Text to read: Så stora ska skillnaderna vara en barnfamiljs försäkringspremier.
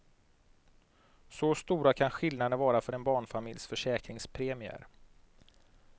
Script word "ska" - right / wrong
wrong